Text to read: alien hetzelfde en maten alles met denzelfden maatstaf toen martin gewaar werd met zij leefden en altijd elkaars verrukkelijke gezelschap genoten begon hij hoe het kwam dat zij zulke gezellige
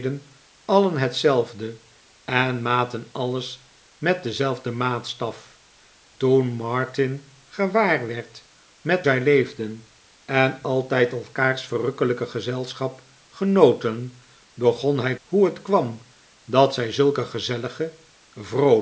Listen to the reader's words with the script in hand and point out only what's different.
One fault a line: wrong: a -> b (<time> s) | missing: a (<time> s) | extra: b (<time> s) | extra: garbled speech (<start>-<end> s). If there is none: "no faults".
no faults